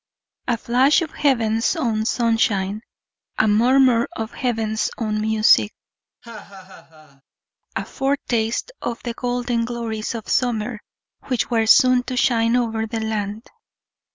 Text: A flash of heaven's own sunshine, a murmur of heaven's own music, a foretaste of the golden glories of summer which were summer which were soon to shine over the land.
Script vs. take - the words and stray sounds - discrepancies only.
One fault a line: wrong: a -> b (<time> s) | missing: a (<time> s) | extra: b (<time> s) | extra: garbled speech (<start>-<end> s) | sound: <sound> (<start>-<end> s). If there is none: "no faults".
sound: laugh (6.2-7.2 s)
missing: summer which were (11.6 s)